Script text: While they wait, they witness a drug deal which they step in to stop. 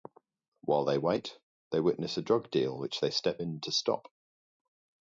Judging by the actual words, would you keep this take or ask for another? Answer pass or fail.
pass